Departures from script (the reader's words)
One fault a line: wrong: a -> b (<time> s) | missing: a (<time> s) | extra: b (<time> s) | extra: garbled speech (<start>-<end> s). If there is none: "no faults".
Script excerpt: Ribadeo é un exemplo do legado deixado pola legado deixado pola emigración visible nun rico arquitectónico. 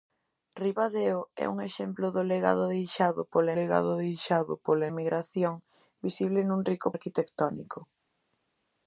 no faults